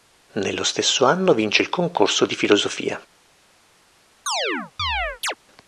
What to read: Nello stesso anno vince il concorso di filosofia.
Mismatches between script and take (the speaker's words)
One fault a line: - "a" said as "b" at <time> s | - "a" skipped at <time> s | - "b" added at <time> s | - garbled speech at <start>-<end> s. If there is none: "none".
none